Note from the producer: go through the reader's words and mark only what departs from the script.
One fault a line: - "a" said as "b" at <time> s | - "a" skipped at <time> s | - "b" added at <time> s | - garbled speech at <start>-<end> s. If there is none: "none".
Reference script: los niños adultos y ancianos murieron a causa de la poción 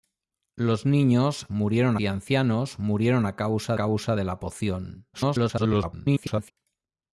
- "adultos" said as "murieron" at 1.5 s
- "causa" added at 3.7 s
- garbled speech at 5.1-6.5 s